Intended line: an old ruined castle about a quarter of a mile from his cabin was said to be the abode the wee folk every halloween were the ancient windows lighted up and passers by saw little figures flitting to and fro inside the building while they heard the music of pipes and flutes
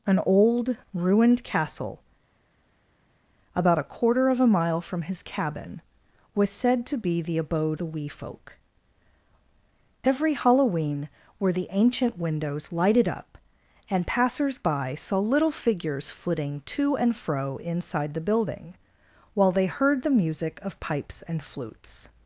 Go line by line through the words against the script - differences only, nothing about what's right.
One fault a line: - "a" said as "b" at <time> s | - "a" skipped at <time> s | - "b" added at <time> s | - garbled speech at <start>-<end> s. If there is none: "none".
none